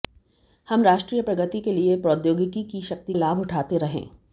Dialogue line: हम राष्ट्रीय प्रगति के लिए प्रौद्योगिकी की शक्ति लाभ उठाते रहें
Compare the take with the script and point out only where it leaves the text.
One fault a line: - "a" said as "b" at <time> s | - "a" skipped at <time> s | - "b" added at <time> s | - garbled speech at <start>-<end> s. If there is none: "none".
none